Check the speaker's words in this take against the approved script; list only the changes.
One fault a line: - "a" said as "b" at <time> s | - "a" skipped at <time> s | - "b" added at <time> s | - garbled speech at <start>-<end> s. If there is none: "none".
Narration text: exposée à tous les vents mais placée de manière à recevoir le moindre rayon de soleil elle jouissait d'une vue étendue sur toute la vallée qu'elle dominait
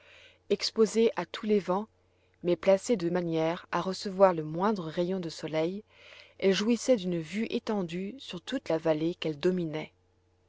none